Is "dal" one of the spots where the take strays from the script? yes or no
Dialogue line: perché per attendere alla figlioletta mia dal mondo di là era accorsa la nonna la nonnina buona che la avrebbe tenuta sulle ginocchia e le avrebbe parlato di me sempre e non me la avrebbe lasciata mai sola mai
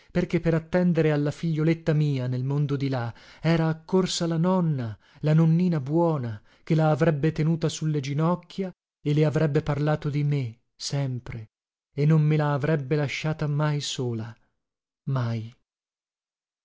yes